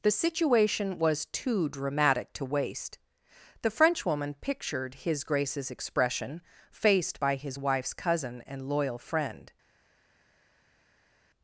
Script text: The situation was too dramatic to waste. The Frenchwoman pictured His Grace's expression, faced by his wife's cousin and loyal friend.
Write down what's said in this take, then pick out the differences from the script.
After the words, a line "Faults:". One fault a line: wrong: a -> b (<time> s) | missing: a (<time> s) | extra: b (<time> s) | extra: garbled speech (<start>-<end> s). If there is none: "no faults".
The situation was too dramatic to waste. The Frenchwoman pictured His Grace's expression, faced by his wife's cousin and loyal friend.
Faults:
no faults